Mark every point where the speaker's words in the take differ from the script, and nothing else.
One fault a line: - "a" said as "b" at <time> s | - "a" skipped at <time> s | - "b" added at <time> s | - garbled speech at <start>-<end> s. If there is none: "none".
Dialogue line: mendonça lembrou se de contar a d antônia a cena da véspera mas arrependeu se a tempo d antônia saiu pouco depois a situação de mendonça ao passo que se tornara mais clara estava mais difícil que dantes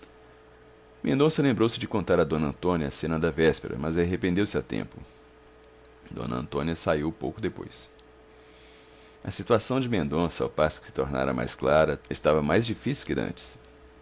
none